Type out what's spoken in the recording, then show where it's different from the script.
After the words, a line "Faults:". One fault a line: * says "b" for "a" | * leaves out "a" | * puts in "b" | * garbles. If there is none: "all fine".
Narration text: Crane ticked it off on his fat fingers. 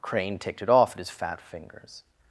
Crane ticked it off at his fat fingers.
Faults:
* says "at" for "on"